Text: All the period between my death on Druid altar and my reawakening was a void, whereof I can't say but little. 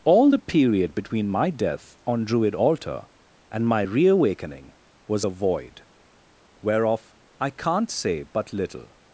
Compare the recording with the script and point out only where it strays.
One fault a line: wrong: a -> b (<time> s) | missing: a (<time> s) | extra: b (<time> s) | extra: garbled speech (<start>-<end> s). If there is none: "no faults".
no faults